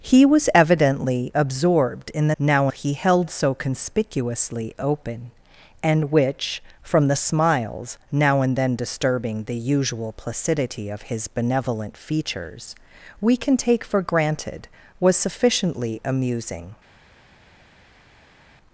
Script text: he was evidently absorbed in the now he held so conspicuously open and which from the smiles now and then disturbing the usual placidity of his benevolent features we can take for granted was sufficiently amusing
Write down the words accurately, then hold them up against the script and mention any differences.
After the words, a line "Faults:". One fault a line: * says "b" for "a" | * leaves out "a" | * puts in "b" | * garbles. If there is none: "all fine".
he was evidently absorbed in the now he held so conspicuously open and which from the smiles now and then disturbing the usual placidity of his benevolent features we can take for granted was sufficiently amusing
Faults:
all fine